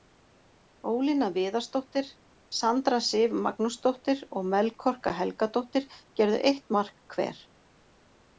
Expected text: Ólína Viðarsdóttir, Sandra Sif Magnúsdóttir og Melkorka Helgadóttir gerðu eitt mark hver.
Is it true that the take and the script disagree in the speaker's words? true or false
false